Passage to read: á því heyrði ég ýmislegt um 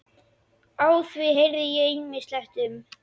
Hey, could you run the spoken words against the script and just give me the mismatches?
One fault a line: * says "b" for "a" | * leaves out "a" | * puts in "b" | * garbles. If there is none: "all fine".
all fine